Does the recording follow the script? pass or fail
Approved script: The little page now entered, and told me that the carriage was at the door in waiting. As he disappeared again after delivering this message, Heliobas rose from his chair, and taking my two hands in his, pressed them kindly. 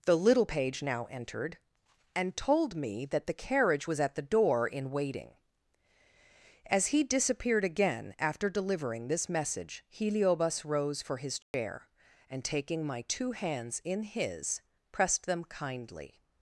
fail